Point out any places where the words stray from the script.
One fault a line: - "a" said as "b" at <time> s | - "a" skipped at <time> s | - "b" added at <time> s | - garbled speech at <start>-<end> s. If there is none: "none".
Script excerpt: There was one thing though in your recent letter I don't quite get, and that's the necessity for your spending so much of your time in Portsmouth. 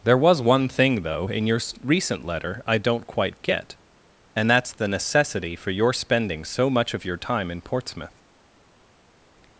none